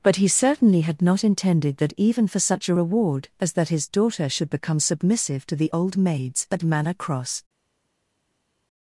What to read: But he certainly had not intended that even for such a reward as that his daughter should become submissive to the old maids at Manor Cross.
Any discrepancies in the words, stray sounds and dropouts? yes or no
no